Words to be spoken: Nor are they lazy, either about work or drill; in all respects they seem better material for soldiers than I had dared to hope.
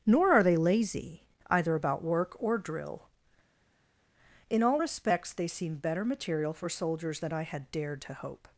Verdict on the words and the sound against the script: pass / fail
pass